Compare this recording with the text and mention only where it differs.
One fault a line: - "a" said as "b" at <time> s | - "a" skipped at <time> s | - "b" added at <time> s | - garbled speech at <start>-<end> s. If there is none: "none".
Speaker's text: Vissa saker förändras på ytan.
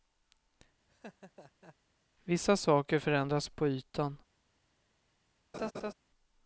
none